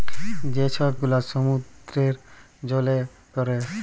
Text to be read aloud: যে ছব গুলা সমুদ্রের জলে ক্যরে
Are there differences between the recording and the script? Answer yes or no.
no